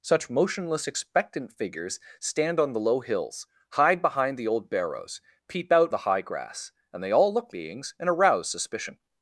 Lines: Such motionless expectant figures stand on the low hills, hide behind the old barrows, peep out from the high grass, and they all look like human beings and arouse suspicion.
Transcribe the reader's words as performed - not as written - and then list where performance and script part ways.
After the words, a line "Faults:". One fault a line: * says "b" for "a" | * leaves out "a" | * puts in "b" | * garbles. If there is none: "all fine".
Such motionless expectant figures stand on the low hills, hide behind the old barrows, peep out the high grass, and they all look beings and arouse suspicion.
Faults:
* leaves out "from"
* leaves out "like human"